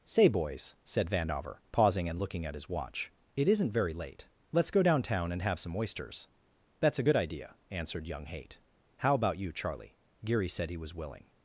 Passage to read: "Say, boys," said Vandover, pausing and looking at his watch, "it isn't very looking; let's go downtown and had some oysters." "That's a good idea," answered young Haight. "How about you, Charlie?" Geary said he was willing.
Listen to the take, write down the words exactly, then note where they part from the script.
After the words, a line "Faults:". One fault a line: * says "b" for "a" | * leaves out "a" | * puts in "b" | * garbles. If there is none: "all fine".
"Say, boys," said Vandover, pausing and looking at his watch, "it isn't very late; let's go downtown and have some oysters." "That's a good idea," answered young Haight. "How about you, Charlie?" Geary said he was willing.
Faults:
* says "late" for "looking"
* says "have" for "had"